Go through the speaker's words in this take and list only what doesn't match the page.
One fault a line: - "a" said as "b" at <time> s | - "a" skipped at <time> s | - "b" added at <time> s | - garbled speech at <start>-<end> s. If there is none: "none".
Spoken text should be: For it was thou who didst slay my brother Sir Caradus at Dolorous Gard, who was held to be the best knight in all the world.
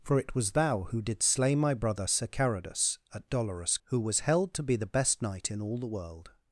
- "Gard" skipped at 3.8 s